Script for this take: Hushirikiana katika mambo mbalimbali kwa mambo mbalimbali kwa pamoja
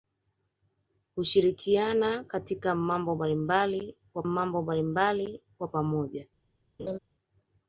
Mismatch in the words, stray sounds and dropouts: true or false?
true